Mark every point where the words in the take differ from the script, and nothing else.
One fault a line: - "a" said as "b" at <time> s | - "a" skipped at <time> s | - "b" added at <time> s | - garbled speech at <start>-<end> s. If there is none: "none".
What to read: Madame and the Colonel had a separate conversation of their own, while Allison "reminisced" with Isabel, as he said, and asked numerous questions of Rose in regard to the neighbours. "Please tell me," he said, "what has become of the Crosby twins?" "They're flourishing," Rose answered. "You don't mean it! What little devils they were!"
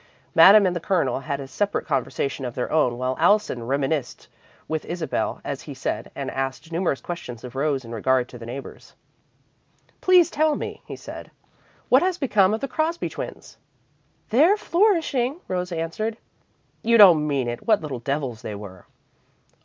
none